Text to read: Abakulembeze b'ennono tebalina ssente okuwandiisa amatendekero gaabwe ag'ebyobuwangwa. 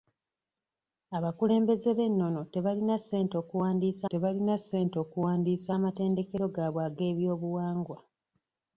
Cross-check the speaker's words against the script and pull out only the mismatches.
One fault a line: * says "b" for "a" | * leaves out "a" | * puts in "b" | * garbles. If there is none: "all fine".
* puts in "tebalina ssente okuwandiisa"